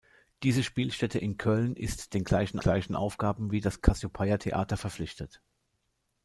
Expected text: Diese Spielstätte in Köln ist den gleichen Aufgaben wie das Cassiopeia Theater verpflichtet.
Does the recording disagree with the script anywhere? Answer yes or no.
yes